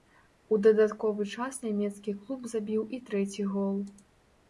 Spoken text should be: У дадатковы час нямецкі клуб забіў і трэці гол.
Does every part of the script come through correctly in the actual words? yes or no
yes